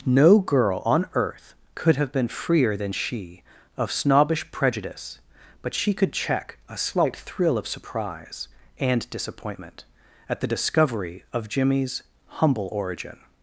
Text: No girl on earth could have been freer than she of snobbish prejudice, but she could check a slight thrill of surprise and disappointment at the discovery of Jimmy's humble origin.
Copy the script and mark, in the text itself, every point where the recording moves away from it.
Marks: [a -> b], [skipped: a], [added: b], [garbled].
No girl on earth could have been freer than she of snobbish prejudice, but she could check a slight thrill of surprise and disappointment at the discovery of Jimmy's humble origin.